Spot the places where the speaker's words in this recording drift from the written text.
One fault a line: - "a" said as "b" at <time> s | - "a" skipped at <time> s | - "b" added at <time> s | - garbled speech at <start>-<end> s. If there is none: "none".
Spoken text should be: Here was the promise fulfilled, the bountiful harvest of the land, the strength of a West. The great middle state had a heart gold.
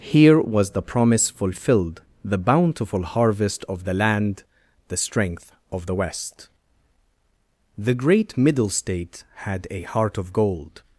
- "a" said as "the" at 5.8 s
- "of" added at 10.2 s